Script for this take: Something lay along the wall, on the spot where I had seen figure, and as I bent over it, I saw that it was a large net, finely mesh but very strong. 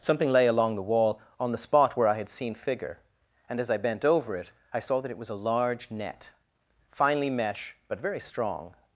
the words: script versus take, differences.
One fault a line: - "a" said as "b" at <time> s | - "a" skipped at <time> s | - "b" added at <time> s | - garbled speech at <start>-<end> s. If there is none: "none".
none